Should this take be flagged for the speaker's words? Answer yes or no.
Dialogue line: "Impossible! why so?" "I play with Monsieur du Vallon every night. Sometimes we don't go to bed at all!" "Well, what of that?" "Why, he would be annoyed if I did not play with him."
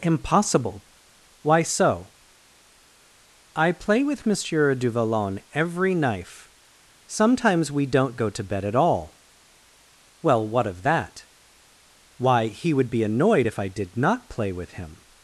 yes